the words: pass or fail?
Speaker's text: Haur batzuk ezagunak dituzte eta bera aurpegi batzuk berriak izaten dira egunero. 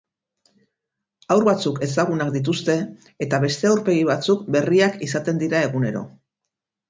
fail